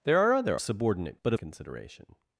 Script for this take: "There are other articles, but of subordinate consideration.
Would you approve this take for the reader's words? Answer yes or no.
no